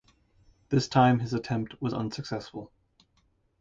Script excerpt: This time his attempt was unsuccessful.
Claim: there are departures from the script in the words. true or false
false